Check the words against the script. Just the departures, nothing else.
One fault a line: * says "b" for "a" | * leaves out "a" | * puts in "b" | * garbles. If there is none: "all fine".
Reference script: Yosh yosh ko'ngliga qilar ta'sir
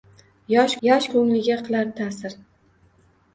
all fine